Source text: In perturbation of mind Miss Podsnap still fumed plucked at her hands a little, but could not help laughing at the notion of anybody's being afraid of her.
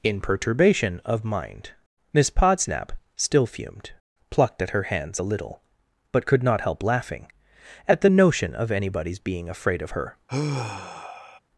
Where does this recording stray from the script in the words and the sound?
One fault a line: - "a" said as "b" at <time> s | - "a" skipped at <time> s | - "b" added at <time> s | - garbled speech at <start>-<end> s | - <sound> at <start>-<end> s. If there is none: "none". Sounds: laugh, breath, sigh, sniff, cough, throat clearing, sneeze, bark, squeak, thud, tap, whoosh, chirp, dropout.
- sigh at 10.3-11.4 s